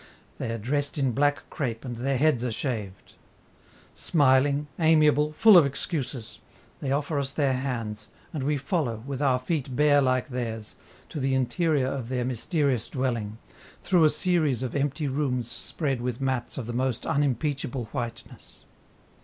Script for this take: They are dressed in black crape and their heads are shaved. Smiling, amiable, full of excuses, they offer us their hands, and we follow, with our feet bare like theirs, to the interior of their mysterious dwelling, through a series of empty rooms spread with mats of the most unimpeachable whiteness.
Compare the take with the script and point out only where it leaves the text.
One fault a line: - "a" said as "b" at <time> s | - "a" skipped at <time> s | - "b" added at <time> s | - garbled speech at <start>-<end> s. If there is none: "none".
none